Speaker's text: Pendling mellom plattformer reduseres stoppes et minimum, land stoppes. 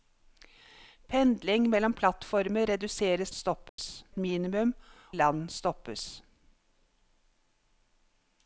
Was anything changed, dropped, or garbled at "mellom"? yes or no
no